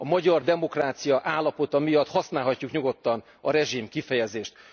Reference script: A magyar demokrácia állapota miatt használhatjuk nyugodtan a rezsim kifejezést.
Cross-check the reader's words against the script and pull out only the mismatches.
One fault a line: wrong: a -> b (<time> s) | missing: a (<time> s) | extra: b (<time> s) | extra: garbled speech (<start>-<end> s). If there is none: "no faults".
no faults